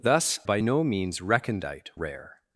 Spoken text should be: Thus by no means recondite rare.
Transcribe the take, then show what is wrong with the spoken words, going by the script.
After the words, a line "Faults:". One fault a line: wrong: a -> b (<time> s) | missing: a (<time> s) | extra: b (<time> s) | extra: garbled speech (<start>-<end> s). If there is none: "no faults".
Thus by no means recondite rare.
Faults:
no faults